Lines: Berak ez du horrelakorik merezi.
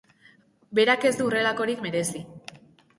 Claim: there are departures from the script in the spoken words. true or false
false